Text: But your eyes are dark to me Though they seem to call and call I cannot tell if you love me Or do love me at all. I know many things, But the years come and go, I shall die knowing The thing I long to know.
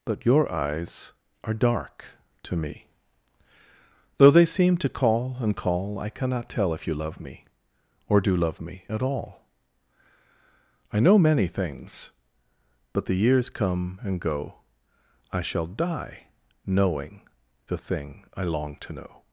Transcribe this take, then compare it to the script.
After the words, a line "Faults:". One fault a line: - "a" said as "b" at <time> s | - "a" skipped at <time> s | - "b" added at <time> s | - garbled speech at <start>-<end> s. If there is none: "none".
But your eyes are dark to me Though they seem to call and call I cannot tell if you love me Or do love me at all. I know many things, But the years come and go, I shall die knowing The thing I long to know.
Faults:
none